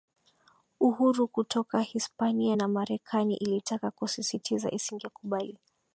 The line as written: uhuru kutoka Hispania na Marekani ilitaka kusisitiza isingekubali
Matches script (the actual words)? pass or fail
pass